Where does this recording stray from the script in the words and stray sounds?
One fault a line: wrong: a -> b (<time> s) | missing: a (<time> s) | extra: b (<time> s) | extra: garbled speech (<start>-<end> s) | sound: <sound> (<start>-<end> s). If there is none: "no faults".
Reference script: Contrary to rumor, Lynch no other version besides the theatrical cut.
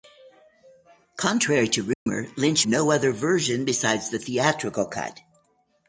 sound: dropout (1.9-2.1 s)